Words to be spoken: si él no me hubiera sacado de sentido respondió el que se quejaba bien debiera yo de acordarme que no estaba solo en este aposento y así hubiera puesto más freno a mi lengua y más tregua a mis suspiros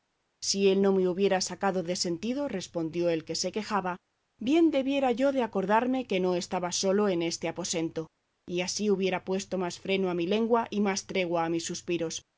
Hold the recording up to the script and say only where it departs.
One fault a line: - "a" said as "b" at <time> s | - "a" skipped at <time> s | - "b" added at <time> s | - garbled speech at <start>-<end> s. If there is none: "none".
none